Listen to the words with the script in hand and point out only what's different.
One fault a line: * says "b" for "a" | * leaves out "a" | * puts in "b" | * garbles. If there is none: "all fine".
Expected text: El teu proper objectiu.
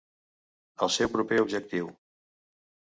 * says "seu" for "teu"